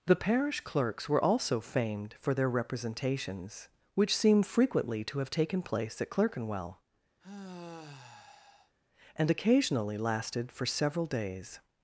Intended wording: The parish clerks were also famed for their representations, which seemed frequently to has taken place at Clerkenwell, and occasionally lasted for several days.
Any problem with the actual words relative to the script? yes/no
yes